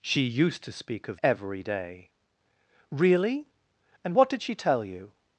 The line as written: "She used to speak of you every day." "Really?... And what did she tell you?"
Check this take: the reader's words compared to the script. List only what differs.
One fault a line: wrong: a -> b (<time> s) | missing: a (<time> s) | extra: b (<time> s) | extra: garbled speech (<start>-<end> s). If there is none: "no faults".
missing: you (1.2 s)